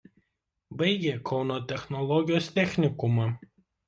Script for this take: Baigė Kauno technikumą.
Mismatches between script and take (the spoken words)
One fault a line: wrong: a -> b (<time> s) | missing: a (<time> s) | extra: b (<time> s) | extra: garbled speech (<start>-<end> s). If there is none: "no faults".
extra: technologijos (1.7 s)